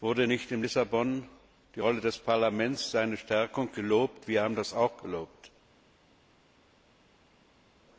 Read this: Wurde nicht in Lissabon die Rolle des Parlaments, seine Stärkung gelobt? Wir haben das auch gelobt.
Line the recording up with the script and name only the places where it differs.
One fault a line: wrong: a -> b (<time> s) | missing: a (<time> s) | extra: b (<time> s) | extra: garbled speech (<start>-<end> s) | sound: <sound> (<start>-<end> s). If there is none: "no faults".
no faults